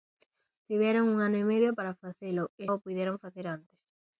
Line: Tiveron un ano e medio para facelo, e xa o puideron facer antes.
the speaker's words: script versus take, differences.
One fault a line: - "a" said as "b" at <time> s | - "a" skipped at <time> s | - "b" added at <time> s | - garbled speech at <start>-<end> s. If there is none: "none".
- "xa" skipped at 2.6 s